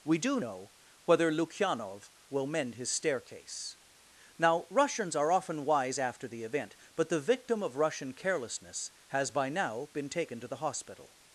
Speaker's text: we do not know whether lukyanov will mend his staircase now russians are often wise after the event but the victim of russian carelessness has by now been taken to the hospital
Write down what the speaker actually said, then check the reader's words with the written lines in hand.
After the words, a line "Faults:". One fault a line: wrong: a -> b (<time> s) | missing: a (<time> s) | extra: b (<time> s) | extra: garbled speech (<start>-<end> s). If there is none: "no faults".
we do know whether lukyanov will mend his staircase now russians are often wise after the event but the victim of russian carelessness has by now been taken to the hospital
Faults:
missing: not (0.4 s)